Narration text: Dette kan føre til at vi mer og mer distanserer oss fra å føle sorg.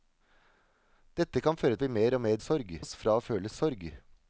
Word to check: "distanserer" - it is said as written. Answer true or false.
false